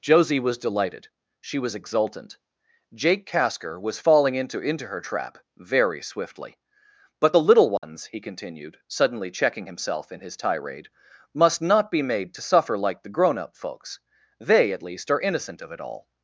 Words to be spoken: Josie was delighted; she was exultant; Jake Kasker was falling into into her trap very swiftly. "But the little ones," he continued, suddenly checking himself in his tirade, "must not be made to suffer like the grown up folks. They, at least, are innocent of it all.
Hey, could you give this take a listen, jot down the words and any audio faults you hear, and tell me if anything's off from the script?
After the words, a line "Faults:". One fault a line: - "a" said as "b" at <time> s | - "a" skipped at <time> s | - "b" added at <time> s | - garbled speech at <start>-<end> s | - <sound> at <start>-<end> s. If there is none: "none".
Josie was delighted; she was exultant; Jake Kasker was falling into into her trap very swiftly. "But the little ones," he continued, suddenly checking himself in his tirade, "must not be made to suffer like the grown up folks. They, at least, are innocent of it all.
Faults:
- dropout at 7.8-7.8 s